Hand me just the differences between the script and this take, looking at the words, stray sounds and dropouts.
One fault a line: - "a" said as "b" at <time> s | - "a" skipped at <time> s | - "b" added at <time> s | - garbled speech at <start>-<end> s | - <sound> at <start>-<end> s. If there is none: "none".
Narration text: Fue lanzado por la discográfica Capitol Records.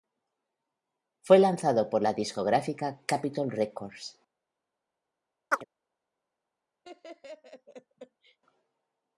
- chirp at 5.5-5.6 s
- laugh at 6.8-8.4 s